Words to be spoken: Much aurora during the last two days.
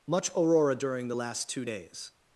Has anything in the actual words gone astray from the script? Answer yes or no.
no